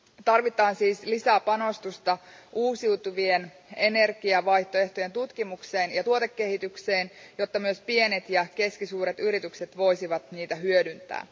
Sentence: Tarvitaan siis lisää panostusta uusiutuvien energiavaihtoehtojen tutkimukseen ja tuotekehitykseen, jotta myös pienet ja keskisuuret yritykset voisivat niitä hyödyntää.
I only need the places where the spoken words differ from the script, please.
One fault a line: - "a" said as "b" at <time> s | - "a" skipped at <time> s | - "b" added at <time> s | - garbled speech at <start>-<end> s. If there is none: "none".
none